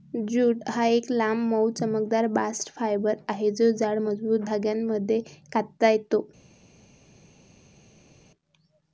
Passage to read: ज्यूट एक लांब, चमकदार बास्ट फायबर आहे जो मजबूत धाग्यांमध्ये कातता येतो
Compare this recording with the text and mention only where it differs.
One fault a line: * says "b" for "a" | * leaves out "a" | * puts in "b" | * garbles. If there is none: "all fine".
* puts in "हा"
* puts in "मऊ"
* puts in "जाड"